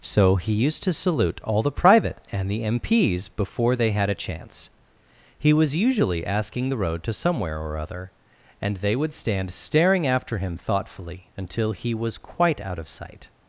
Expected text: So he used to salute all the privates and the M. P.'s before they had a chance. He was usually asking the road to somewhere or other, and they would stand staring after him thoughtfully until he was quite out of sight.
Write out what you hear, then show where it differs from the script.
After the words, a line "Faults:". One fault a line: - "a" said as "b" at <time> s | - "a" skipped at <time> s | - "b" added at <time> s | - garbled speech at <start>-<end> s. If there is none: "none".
So he used to salute all the private and the M. P.'s before they had a chance. He was usually asking the road to somewhere or other, and they would stand staring after him thoughtfully until he was quite out of sight.
Faults:
- "privates" said as "private" at 1.7 s